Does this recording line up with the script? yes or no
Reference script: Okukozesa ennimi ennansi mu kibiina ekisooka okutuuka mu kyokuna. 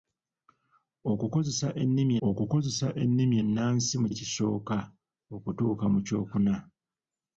no